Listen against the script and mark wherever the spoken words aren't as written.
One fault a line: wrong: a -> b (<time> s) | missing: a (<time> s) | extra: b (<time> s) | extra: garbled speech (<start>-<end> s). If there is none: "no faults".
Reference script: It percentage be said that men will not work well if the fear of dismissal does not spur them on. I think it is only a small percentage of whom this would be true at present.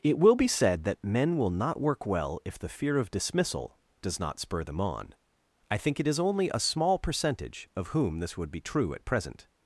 wrong: percentage -> will (0.2 s)